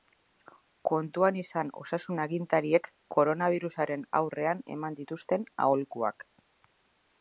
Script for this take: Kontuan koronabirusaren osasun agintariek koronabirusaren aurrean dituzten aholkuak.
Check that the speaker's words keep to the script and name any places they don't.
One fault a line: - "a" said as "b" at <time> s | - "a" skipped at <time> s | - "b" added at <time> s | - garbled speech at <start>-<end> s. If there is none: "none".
- "koronabirusaren" said as "izan" at 1.4 s
- "eman" added at 4.8 s